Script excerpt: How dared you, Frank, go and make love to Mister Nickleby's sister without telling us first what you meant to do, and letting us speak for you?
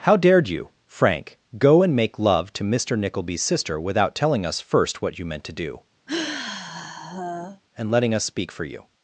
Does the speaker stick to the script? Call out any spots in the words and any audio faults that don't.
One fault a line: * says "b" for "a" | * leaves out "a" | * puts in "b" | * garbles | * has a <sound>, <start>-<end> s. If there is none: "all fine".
* has a sigh, 6.1-7.6 s